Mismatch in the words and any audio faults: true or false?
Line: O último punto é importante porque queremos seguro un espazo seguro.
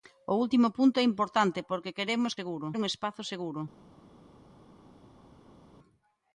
false